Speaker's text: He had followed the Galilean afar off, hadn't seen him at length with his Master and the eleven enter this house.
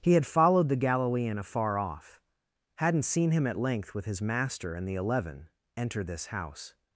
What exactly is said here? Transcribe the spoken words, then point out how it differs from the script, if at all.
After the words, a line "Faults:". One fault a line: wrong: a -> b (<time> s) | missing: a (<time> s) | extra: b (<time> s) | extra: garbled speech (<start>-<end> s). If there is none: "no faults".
He had followed the Galilean afar off, hadn't seen him at length with his Master and the eleven enter this house.
Faults:
no faults